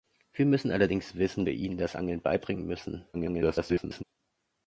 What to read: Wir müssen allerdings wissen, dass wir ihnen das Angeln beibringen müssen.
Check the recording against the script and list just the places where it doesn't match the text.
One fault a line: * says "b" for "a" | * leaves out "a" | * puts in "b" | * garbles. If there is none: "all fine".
* leaves out "dass"
* garbles